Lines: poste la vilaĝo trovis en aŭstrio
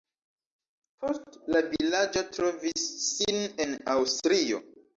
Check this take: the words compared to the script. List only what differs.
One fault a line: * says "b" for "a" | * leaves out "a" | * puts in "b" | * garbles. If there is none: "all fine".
* puts in "sin"